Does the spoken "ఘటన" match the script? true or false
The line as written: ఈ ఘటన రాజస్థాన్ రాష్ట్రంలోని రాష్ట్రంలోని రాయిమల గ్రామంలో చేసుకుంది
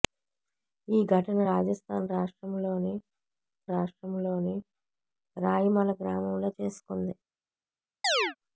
true